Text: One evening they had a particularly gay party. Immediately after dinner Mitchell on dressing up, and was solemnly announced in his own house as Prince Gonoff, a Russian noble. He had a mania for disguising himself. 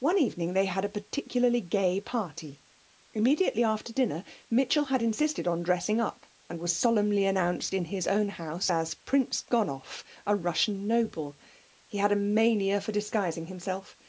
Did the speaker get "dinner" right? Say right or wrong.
right